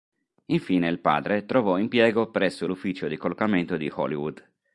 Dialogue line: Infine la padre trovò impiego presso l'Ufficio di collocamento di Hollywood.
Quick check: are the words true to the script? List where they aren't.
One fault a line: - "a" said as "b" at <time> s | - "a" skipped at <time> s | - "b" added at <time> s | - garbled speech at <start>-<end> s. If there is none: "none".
- "la" said as "il" at 0.9 s